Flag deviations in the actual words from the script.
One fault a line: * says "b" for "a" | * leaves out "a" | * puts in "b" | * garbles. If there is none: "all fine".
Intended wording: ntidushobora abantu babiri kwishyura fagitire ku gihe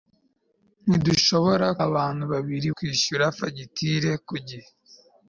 all fine